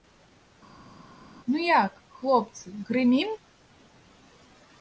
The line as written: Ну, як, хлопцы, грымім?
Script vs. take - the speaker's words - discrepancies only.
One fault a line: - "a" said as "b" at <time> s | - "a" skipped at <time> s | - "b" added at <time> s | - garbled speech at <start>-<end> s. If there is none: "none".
none